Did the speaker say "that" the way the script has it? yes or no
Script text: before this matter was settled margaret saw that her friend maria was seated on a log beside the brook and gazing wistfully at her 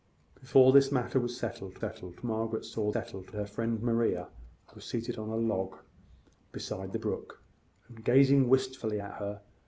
no